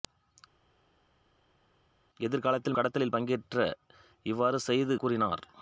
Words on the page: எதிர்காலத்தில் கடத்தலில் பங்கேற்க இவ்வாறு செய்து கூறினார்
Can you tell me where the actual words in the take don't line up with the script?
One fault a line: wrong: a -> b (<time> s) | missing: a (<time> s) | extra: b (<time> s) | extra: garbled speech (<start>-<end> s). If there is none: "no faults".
no faults